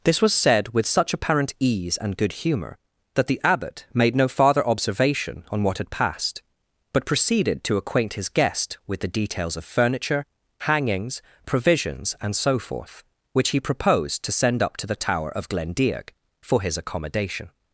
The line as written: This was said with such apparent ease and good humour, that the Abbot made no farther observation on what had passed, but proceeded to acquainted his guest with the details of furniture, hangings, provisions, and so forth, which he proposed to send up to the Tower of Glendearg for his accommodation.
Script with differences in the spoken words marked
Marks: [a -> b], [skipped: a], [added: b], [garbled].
This was said with such apparent ease and good humour, that the Abbot made no farther observation on what had passed, but proceeded to [acquainted -> acquaint] his guest with the details of furniture, hangings, provisions, and so forth, which he proposed to send up to the Tower of Glendearg for his accommodation.